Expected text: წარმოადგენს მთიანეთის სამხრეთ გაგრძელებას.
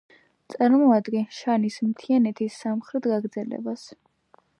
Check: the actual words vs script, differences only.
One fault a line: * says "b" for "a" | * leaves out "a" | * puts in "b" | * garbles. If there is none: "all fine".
* puts in "შანის"